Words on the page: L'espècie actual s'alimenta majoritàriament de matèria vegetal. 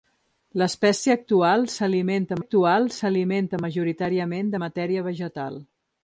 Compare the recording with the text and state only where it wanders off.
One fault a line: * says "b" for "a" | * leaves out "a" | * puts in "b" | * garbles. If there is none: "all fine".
* puts in "actual s'alimenta"